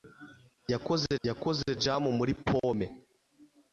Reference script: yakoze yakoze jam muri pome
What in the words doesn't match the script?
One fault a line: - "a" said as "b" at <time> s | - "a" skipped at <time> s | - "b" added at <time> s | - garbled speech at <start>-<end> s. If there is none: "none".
none